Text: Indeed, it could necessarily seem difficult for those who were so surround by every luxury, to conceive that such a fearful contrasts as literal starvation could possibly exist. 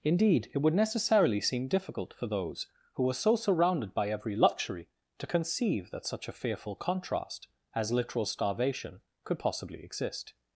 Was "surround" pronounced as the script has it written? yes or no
no